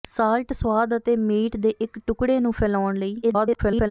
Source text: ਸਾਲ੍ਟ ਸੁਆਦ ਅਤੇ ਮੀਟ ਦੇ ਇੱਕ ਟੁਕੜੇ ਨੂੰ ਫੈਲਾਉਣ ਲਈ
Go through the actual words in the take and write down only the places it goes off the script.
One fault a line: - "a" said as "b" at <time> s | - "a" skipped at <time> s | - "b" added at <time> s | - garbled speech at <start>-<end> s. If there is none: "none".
- garbled speech at 3.2-3.9 s